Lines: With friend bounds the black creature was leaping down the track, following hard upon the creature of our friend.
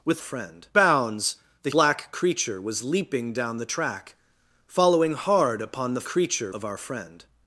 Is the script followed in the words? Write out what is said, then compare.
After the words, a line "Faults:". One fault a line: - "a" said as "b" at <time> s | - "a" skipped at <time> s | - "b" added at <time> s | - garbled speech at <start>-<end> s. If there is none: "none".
With friend bounds the black creature was leaping down the track, following hard upon the creature of our friend.
Faults:
none